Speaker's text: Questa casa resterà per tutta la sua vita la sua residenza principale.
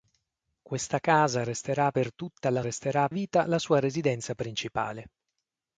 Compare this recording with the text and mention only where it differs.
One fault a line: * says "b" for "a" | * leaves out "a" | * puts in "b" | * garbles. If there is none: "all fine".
* says "resterà" for "sua"